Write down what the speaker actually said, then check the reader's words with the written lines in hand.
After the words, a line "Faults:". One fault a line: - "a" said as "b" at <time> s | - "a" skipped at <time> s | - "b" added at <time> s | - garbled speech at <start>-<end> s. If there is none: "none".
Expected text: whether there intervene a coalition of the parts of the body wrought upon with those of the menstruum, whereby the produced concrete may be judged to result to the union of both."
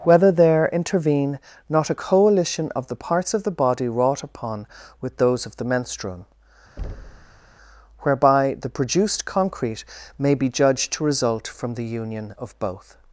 whether there intervene not a coalition of the parts of the body wrought upon with those of the menstruum, whereby the produced concrete may be judged to result from the union of both."
Faults:
- "not" added at 1.7 s
- "to" said as "from" at 11.5 s